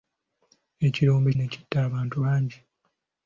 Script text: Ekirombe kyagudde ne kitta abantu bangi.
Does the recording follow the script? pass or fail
fail